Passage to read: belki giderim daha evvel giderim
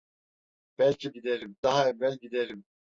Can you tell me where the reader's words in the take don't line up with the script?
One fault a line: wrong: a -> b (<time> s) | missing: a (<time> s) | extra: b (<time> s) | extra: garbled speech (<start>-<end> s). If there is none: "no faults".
no faults